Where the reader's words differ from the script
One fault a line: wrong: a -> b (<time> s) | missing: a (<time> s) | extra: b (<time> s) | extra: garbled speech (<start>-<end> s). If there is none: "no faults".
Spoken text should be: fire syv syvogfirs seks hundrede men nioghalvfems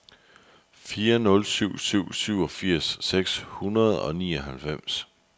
extra: nul (1.2 s)
extra: syv (1.8 s)
wrong: men -> og (4.0 s)